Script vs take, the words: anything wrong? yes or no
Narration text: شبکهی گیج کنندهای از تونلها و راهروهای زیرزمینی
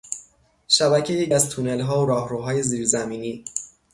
yes